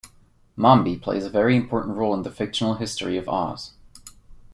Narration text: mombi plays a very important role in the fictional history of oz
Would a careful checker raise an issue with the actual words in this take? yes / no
no